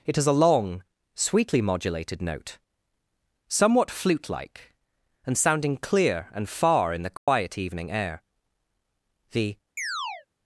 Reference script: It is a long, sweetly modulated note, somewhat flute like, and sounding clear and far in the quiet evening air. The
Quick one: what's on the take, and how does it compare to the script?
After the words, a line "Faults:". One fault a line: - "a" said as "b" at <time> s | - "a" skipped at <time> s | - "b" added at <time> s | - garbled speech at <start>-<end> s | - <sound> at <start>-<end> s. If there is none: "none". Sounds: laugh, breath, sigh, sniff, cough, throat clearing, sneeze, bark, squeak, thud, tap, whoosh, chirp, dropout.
It is a long, sweetly modulated note, somewhat flute like, and sounding clear and far in the quiet evening air. The
Faults:
- dropout at 7.2-7.3 s
- chirp at 9.8-10.3 s